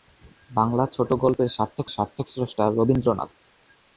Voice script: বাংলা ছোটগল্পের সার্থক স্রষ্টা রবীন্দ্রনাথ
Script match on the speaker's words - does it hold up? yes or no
no